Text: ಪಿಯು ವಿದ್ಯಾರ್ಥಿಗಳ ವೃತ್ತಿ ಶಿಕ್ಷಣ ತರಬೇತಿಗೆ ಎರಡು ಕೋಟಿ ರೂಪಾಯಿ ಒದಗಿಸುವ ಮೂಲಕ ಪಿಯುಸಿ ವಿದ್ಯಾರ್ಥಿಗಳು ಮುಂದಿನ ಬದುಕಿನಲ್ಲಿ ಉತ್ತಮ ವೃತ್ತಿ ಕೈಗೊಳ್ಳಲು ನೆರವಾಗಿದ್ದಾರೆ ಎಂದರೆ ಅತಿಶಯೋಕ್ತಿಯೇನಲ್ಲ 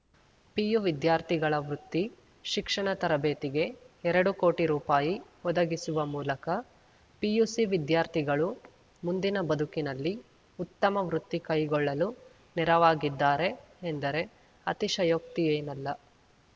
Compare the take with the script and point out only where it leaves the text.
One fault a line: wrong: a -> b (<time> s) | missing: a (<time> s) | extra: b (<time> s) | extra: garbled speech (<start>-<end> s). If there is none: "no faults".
no faults